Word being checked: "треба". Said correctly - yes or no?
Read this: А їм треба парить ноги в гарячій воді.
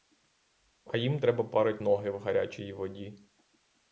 yes